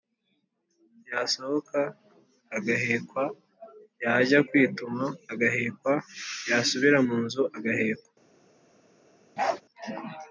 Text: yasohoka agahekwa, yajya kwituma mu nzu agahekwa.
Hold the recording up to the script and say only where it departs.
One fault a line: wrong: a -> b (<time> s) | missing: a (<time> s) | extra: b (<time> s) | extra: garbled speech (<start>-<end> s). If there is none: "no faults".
extra: agahekwa yasubira (5.3 s)